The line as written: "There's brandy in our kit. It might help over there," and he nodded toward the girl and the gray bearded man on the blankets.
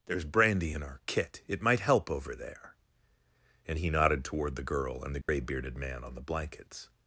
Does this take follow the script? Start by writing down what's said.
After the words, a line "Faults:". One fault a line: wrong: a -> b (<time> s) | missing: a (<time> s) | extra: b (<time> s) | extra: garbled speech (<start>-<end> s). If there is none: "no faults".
"There's brandy in our kit. It might help over there," and he nodded toward the girl and the gray bearded man on the blankets.
Faults:
no faults